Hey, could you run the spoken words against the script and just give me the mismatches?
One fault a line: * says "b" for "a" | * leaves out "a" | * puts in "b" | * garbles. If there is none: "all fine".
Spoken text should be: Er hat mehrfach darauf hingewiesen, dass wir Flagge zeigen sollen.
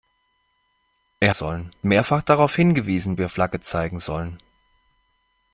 * says "sollen" for "hat"
* leaves out "dass"